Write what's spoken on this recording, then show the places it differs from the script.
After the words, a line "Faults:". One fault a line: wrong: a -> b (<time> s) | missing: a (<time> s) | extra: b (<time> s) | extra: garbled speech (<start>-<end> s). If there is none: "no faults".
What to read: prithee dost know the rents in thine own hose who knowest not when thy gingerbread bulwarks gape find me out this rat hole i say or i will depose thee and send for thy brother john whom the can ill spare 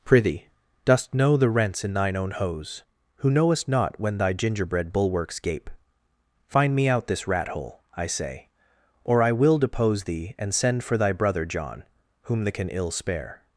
prithee dost know the rents in thine own hose who knowest not when thy gingerbread bulwarks gape find me out this rat hole i say or i will depose thee and send for thy brother john whom the can ill spare
Faults:
no faults